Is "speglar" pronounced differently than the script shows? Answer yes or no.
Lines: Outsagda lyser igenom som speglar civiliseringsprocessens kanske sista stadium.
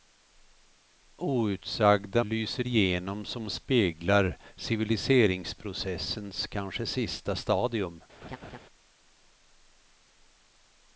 no